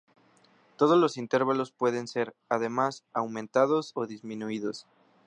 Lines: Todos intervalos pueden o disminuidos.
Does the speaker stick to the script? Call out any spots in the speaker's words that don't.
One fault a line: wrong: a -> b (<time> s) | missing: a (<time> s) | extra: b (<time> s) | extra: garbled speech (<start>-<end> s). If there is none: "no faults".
extra: los (1.0 s)
extra: ser además aumentados (2.1 s)